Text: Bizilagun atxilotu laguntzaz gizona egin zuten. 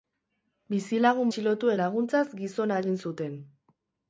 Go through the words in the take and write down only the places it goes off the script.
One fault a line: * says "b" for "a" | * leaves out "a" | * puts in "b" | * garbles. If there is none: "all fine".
all fine